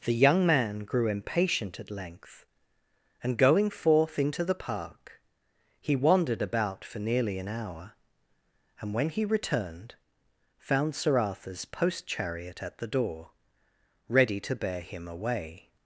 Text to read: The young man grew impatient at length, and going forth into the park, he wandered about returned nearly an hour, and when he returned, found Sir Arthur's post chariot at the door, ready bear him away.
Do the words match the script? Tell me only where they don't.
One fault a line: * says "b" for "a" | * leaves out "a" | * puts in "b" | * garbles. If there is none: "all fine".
* says "for" for "returned"
* puts in "to"